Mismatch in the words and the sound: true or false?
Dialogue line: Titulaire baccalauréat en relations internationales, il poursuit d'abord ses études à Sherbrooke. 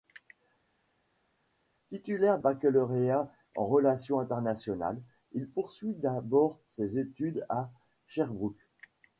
false